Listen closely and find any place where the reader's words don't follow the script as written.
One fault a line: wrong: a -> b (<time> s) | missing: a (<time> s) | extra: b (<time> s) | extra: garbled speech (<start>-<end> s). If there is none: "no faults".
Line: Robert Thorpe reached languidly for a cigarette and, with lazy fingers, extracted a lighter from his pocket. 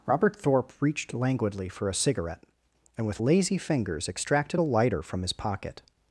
no faults